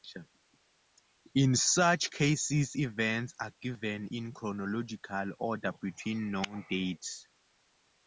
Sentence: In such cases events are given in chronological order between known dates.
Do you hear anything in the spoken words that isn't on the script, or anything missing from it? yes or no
no